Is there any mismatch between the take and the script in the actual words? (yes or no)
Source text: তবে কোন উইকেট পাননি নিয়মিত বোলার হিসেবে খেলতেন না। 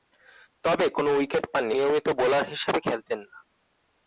no